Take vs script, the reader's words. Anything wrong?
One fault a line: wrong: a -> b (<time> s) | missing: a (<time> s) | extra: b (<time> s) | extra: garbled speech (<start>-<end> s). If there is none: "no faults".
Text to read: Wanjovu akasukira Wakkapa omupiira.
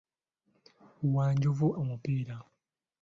missing: akasukira Wakkapa (1.7 s)